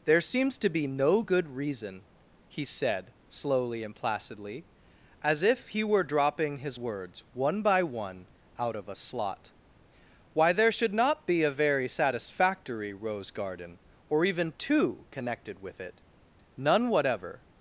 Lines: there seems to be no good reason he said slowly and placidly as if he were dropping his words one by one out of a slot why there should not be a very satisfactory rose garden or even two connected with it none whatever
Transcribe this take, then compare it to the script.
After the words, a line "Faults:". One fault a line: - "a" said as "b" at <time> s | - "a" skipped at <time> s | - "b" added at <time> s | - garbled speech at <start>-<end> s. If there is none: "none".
there seems to be no good reason he said slowly and placidly as if he were dropping his words one by one out of a slot why there should not be a very satisfactory rose garden or even two connected with it none whatever
Faults:
none